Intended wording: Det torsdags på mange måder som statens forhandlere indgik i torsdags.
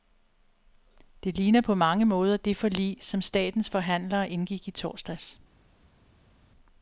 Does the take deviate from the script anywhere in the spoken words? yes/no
yes